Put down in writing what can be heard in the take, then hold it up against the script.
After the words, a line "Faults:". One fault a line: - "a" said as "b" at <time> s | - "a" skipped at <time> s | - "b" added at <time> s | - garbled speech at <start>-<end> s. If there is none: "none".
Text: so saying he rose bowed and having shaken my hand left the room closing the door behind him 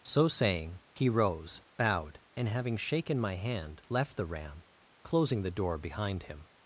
so saying he rose bowed and having shaken my hand left the ram closing the door behind him
Faults:
- "room" said as "ram" at 4.2 s